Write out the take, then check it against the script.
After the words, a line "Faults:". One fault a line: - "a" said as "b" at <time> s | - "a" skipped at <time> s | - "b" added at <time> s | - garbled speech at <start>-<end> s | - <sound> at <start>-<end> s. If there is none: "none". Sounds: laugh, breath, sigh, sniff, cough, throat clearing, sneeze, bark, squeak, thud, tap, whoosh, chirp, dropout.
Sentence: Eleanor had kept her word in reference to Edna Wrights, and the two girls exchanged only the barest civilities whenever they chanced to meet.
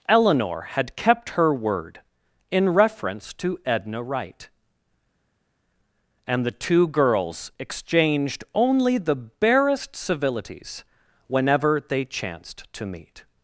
Eleanor had kept her word in reference to Edna Wright, and the two girls exchanged only the barest civilities whenever they chanced to meet.
Faults:
- "Wrights" said as "Wright" at 4.0 s